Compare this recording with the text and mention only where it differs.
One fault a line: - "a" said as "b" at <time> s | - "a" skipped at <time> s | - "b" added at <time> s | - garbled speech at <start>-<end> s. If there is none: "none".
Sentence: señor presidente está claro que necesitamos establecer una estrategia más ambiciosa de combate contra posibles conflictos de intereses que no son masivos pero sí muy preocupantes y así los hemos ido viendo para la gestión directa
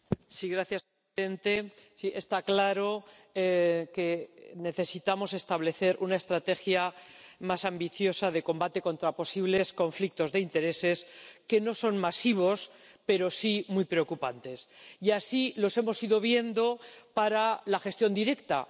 none